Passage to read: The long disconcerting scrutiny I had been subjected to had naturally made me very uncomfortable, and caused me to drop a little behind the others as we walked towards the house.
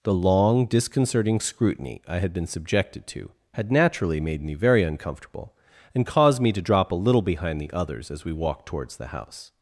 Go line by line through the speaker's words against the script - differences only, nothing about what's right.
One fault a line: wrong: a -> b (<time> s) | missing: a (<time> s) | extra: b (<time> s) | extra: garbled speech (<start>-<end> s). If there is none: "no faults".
no faults